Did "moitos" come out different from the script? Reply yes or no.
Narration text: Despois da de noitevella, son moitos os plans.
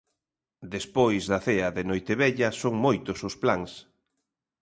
no